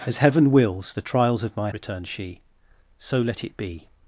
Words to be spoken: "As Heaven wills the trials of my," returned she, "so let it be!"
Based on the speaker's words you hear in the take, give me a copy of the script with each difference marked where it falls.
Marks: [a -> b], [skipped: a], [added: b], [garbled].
"As Heaven wills the trials of my," returned she, "so let it be!"